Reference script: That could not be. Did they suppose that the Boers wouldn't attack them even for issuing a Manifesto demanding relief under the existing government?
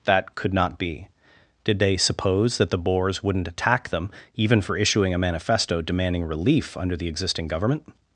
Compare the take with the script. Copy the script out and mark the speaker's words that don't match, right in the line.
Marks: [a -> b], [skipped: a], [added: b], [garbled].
That could not be. Did they suppose that the Boers wouldn't attack them even for issuing a Manifesto demanding relief under the existing government?